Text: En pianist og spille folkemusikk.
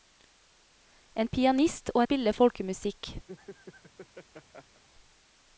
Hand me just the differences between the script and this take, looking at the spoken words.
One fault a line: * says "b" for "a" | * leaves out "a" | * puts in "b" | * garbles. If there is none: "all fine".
all fine